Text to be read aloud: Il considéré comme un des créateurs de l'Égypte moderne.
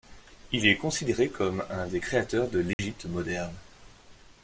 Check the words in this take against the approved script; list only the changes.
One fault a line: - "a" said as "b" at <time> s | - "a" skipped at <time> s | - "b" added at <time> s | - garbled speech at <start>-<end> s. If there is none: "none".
- "est" added at 0.7 s